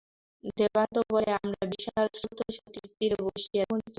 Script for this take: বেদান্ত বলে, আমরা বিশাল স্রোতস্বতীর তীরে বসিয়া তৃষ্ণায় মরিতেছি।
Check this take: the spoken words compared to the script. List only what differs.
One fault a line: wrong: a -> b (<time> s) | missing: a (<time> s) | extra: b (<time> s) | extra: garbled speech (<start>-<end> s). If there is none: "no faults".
missing: তৃষ্ণায় (3.6 s)